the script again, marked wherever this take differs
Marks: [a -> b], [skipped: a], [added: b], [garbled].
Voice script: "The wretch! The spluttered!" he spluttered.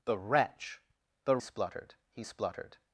"The wretch! The spluttered!" he spluttered.